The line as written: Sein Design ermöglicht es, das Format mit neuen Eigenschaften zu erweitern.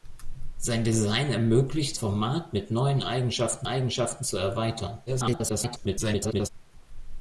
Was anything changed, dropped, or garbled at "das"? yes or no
yes